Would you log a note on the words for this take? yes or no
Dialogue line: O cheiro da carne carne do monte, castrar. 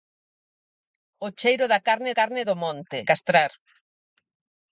no